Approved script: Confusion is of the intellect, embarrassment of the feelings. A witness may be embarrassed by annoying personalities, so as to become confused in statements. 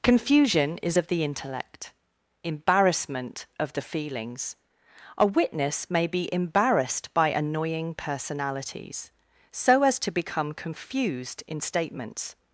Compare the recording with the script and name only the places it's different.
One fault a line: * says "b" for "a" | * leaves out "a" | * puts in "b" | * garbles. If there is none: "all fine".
all fine